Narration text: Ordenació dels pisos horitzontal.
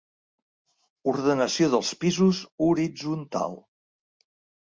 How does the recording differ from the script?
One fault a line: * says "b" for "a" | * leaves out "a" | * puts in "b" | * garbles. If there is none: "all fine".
all fine